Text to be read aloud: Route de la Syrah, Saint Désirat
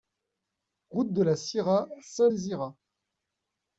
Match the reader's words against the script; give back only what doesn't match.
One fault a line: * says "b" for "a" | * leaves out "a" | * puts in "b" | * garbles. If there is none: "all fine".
all fine